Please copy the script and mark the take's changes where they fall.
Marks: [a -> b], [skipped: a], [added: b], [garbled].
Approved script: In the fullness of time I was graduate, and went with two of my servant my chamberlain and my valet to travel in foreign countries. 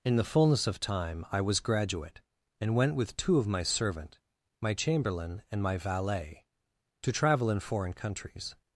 In the fullness of time I was graduate, and went with two of my servant my chamberlain and my valet to travel in foreign countries.